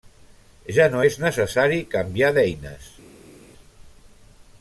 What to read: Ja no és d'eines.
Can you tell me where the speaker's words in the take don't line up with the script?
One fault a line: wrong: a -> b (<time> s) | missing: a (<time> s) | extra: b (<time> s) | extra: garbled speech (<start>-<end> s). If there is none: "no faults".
extra: necessari canviar (1.2 s)